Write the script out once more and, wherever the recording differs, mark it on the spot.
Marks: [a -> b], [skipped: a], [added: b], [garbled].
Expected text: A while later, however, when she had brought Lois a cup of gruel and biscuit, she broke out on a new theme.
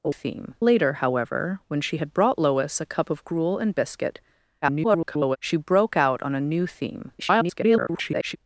A [while -> theme] later, however, when she had brought Lois a cup of gruel and biscuit, [garbled] she broke out on a new theme. [garbled]